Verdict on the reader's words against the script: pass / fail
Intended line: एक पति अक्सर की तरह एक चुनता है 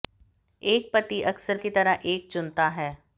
pass